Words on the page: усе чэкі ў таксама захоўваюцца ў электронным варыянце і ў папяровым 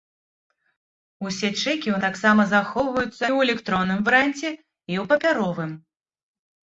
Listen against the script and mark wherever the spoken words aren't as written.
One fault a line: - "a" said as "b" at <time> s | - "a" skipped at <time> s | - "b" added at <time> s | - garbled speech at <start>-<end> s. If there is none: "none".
none